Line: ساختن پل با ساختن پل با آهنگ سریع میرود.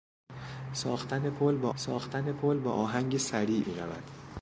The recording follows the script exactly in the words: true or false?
true